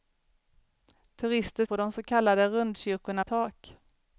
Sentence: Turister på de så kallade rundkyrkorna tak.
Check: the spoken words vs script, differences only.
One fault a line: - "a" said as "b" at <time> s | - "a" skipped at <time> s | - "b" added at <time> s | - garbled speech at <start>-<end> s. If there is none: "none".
none